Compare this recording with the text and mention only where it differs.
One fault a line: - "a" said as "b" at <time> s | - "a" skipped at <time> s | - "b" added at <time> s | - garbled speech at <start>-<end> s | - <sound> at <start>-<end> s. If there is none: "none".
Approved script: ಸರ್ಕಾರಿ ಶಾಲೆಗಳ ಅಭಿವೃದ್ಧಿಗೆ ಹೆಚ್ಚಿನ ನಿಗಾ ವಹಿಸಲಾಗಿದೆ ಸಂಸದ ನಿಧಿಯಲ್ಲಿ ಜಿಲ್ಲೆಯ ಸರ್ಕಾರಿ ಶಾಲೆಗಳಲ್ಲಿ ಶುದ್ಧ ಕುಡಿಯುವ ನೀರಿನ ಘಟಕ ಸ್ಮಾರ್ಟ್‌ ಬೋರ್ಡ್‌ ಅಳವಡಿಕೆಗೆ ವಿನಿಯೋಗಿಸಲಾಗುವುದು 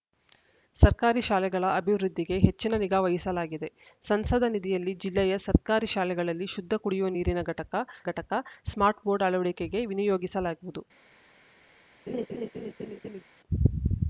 - "ಘಟಕ" added at 8.1 s
- laugh at 12.1-13.2 s